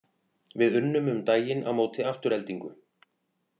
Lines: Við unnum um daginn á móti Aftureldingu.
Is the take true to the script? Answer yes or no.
yes